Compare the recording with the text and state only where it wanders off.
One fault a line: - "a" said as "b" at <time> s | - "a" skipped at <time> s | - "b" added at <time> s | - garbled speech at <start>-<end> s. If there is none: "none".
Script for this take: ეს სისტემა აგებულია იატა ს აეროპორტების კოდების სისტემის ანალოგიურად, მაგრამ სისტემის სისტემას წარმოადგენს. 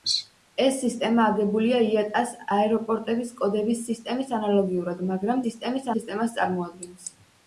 none